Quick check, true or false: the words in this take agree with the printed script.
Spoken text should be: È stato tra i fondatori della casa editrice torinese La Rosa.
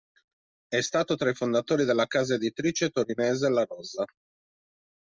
true